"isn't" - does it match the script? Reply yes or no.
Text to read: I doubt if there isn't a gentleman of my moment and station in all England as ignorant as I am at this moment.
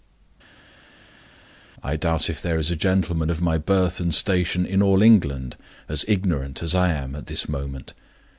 no